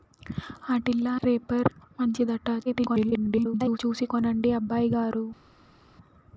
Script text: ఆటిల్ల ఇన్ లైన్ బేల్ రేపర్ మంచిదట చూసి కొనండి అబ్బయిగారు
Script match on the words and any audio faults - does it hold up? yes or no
no